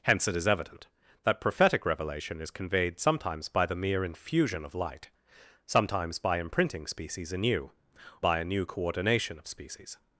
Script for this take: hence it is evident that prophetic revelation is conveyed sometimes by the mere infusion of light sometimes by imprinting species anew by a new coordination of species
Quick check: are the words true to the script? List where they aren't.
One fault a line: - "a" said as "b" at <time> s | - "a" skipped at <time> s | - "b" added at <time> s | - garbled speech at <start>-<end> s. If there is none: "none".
none